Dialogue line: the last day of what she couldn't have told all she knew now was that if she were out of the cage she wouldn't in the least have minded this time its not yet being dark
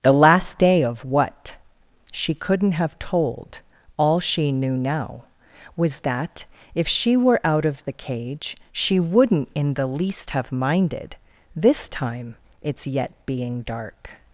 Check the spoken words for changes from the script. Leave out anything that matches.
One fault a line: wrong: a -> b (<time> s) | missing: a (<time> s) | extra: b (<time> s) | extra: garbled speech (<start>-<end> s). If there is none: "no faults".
missing: not (12.9 s)